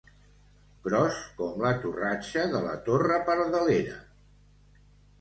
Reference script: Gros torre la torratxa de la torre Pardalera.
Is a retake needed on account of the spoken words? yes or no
yes